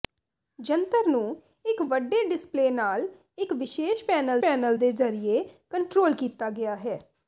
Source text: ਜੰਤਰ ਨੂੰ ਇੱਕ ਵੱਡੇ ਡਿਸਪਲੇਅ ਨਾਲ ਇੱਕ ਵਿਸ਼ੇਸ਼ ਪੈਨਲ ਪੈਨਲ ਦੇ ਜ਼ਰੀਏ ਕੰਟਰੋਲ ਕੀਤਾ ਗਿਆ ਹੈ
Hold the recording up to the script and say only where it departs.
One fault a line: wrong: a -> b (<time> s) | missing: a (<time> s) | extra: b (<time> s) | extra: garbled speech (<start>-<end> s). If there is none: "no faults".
no faults